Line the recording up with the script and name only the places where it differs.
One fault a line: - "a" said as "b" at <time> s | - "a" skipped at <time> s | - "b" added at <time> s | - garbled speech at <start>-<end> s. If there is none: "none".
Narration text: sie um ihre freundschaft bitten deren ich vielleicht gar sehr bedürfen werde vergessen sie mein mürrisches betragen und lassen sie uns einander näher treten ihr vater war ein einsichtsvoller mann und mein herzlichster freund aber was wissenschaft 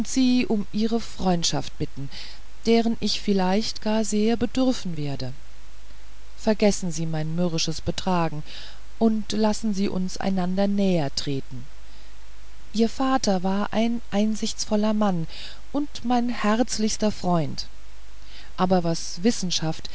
none